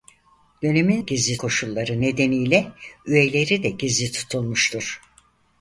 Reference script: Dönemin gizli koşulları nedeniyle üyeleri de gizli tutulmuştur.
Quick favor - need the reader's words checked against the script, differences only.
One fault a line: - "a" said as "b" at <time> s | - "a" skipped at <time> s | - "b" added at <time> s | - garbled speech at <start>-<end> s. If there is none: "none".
none